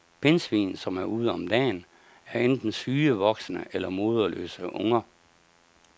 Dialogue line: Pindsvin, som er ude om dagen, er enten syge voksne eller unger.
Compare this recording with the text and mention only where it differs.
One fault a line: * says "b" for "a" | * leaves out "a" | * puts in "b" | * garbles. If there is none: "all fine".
* puts in "moderløse"